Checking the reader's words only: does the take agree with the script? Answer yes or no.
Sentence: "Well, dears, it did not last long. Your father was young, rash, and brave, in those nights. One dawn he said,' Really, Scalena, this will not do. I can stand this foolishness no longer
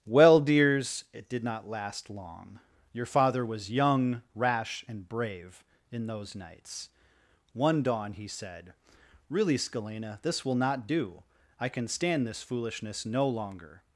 yes